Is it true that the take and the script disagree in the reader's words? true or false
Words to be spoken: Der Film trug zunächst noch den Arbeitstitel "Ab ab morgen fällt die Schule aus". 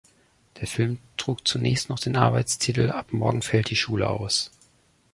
true